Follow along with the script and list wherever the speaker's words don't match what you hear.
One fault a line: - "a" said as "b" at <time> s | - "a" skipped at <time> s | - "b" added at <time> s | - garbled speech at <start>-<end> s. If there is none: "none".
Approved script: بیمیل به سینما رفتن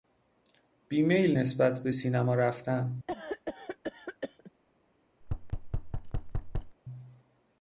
- "نسبت" added at 1.4 s